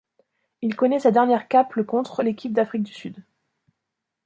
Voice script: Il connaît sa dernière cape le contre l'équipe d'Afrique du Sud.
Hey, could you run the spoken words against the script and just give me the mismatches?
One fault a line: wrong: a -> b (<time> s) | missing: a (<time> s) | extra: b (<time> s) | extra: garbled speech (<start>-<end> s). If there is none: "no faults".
no faults